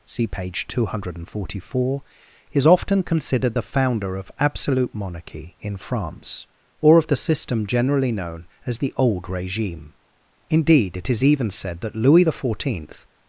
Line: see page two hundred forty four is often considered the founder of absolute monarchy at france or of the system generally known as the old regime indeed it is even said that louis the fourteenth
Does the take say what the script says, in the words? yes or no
no